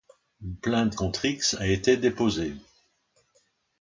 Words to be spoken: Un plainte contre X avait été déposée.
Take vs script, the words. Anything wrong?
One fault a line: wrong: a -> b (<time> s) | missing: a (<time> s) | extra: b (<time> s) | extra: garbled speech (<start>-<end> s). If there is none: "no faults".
wrong: Un -> Une (0.4 s)
wrong: avait -> a (1.5 s)